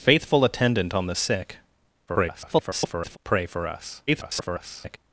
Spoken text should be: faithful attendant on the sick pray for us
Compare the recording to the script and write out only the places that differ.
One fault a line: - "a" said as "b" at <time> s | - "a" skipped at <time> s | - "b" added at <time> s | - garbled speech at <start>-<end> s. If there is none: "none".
- garbled speech at 2.1-3.2 s
- garbled speech at 4.1-5.0 s